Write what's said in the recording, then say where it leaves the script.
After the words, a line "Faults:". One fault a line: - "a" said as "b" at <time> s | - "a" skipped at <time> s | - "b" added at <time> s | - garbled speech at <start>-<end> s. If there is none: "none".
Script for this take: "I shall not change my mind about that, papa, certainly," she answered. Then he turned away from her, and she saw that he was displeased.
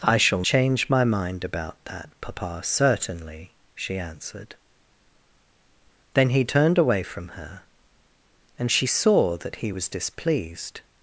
"I shall change my mind about that, papa, certainly," she answered. Then he turned away from her, and she saw that he was displeased.
Faults:
- "not" skipped at 0.4 s